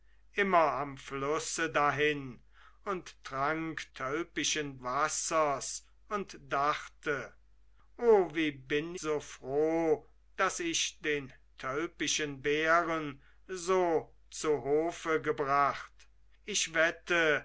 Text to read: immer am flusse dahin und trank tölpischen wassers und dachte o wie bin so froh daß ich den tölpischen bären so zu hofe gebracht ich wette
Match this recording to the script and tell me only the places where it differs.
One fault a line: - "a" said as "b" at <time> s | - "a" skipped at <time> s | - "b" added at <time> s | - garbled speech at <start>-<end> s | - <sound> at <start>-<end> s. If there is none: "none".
none